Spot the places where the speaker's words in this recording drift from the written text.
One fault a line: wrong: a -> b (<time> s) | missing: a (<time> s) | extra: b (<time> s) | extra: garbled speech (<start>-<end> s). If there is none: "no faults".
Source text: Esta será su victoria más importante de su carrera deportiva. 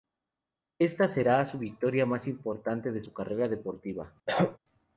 no faults